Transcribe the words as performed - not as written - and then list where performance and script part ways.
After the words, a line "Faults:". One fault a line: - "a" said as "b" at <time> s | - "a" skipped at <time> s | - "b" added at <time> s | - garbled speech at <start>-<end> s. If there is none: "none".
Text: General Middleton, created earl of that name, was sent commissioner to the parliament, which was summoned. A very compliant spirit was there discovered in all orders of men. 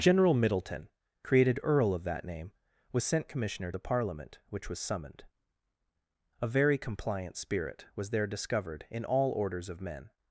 General Middleton, created earl of that name, was sent commissioner the parliament, which was summoned. A very compliant spirit was there discovered in all orders of men.
Faults:
- "to" skipped at 3.7 s